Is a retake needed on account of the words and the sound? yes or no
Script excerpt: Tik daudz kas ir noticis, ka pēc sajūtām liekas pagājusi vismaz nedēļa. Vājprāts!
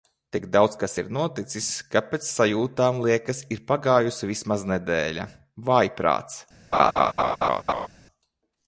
yes